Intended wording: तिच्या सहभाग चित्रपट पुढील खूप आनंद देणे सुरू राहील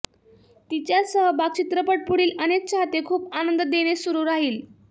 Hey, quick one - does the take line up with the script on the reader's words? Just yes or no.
no